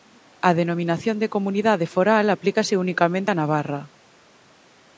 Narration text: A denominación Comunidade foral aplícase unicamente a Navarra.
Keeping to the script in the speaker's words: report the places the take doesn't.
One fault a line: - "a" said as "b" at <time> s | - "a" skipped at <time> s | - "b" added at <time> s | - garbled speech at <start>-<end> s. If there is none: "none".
- "de" added at 1.2 s